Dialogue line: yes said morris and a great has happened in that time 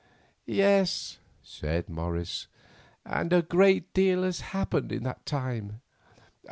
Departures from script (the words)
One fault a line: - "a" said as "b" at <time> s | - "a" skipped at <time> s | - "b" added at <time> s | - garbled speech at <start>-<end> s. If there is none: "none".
- "deal" added at 3.9 s